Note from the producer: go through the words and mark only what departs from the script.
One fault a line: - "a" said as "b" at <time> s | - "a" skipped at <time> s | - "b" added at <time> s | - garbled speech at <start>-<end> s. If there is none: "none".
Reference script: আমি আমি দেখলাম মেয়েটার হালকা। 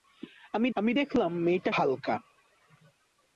none